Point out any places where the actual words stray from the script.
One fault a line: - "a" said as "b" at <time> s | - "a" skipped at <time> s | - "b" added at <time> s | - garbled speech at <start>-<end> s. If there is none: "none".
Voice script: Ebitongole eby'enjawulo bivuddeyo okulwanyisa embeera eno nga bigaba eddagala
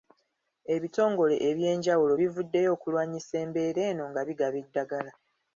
none